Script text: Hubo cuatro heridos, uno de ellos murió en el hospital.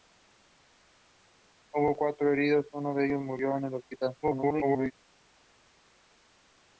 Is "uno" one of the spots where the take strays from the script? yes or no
no